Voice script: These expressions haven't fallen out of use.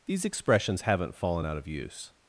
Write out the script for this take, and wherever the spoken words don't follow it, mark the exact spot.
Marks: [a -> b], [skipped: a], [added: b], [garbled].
These expressions haven't fallen out of use.